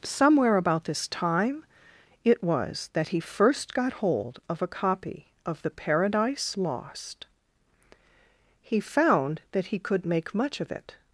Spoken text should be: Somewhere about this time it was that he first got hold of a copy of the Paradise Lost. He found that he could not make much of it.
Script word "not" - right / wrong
wrong